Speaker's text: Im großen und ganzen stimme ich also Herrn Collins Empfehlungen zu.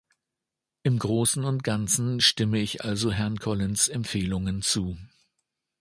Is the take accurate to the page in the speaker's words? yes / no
yes